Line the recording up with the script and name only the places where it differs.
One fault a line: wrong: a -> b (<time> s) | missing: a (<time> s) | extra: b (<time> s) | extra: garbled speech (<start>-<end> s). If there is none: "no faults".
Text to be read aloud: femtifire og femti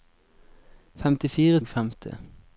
no faults